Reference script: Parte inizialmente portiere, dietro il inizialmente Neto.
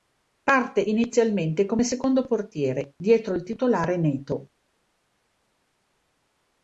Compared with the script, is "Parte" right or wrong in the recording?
right